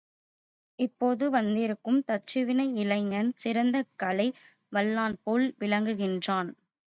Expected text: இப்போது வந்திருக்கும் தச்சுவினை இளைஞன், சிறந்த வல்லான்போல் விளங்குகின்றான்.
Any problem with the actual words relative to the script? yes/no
yes